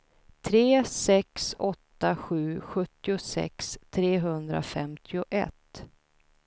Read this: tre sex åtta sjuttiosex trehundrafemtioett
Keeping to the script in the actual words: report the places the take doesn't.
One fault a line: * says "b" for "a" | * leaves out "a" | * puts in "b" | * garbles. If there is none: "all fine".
* puts in "sju"